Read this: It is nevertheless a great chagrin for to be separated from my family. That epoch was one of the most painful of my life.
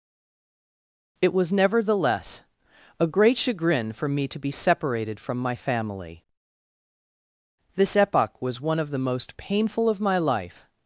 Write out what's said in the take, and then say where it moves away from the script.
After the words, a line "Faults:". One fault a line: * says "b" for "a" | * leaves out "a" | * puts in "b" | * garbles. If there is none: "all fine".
It was nevertheless a great chagrin for me to be separated from my family. This epoch was one of the most painful of my life.
Faults:
* says "was" for "is"
* puts in "me"
* says "This" for "That"